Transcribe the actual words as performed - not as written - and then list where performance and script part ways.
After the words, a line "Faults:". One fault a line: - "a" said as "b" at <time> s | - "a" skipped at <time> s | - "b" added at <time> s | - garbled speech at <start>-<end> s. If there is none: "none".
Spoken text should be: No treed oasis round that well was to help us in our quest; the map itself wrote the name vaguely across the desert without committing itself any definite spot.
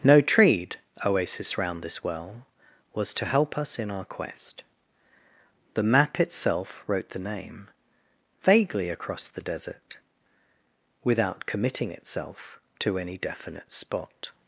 No treed oasis round this well was to help us in our quest; the map itself wrote the name vaguely across the desert without committing itself to any definite spot.
Faults:
- "that" said as "this" at 1.8 s
- "to" added at 12.8 s